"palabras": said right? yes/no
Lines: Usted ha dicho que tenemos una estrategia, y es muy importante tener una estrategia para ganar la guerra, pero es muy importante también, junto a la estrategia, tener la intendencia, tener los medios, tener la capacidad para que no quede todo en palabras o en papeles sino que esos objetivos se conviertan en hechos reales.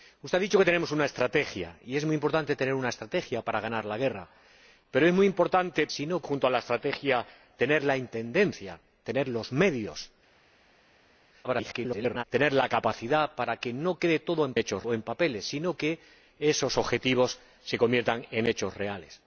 no